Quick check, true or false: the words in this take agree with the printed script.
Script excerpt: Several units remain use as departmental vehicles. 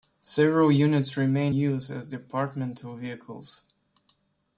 true